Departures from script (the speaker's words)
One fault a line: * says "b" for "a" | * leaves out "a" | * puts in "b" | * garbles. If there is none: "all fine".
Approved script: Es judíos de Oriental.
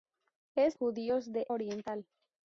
all fine